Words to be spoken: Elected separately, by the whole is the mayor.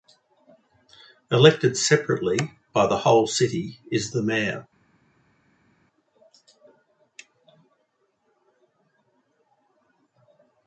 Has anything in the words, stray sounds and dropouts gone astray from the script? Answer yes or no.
yes